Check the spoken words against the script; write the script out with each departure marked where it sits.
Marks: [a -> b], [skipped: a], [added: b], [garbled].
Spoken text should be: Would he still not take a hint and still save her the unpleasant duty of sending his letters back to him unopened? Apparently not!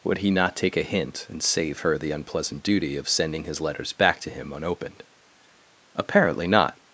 Would he [skipped: still] not take a hint and [skipped: still] save her the unpleasant duty of sending his letters back to him unopened? Apparently not!